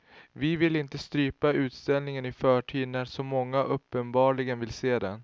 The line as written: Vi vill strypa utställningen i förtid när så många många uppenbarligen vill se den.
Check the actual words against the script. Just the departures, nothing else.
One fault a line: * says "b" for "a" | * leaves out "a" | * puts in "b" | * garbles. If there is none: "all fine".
* puts in "inte"
* leaves out "många"